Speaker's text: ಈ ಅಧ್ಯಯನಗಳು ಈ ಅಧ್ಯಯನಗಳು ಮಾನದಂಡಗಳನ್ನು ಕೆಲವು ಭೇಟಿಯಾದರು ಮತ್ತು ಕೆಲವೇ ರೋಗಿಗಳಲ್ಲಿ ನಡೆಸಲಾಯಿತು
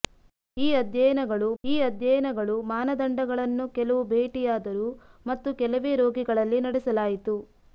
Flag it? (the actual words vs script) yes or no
no